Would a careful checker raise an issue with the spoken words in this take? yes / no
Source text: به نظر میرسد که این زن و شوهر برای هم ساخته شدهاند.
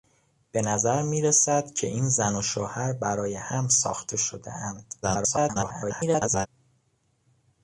yes